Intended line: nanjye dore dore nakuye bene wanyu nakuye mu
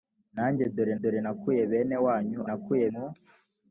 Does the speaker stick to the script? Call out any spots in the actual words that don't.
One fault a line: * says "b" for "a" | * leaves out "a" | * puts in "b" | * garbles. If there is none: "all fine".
all fine